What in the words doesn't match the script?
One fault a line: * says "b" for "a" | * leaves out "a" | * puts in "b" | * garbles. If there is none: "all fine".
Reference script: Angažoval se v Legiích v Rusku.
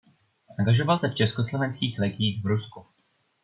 * puts in "Československých"